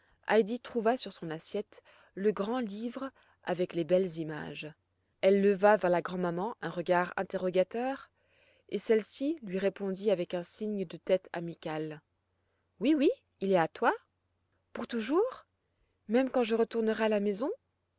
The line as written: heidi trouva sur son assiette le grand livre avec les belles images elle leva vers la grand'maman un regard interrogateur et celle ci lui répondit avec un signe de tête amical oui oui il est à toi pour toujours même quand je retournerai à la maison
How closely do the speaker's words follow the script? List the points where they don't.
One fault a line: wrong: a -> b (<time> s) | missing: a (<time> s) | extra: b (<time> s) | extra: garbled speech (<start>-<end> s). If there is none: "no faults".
no faults